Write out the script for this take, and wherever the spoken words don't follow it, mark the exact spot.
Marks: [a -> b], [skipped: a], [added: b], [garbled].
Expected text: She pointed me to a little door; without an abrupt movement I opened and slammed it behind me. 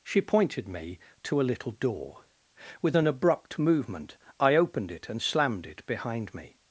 She pointed me to a little door; [without -> with] an abrupt movement I opened [added: it] and slammed it behind me.